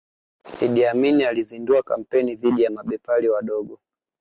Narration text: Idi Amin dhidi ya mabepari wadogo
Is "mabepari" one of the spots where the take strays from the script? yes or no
no